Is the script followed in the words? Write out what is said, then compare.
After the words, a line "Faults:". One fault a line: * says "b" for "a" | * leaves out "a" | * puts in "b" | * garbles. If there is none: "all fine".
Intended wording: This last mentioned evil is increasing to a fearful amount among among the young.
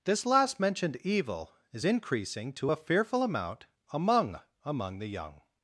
This last mentioned evil is increasing to a fearful amount among among the young.
Faults:
all fine